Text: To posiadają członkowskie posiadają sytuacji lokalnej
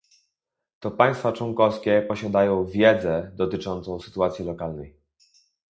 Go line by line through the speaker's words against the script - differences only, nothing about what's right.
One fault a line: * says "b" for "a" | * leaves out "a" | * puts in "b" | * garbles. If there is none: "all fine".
* says "państwa" for "posiadają"
* puts in "wiedzę dotyczącą"